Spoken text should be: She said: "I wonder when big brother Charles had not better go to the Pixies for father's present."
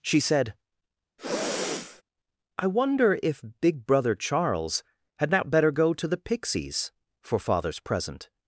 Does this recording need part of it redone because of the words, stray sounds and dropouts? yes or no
yes